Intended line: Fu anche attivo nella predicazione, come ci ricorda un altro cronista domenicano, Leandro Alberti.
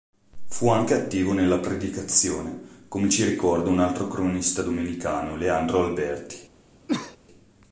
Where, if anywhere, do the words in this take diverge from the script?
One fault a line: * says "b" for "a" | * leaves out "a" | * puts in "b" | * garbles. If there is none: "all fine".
all fine